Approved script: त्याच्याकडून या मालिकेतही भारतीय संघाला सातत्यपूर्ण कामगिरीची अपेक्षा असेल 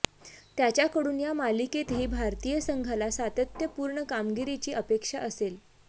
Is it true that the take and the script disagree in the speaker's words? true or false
false